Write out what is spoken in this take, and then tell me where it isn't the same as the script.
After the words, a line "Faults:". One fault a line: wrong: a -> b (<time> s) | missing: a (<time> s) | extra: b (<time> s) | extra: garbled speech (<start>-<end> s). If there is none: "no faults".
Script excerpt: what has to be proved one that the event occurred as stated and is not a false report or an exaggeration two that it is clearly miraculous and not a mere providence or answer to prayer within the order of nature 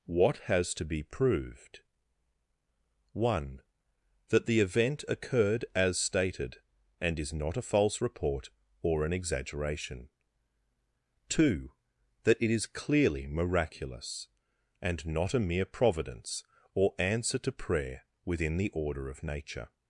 what has to be proved one that the event occurred as stated and is not a false report or an exaggeration two that it is clearly miraculous and not a mere providence or answer to prayer within the order of nature
Faults:
no faults